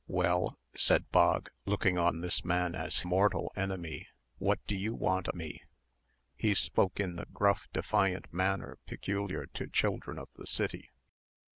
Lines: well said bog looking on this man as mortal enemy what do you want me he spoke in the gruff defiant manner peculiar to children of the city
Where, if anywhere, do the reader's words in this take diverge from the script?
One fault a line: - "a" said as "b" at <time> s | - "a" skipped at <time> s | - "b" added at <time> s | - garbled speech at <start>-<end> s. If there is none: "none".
none